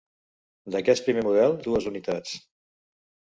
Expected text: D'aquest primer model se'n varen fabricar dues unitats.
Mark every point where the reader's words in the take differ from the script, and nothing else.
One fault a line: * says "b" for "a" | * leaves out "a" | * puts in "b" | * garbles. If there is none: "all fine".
* leaves out "se'n varen fabricar"